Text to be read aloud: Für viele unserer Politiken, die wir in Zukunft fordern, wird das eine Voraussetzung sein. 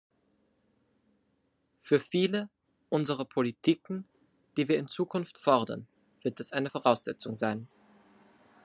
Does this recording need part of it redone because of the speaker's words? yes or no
no